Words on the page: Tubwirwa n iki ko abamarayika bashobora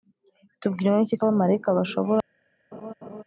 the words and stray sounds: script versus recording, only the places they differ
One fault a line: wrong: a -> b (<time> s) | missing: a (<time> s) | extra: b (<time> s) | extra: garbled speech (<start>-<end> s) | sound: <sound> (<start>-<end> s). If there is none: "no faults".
sound: laugh (2.7-3.2 s)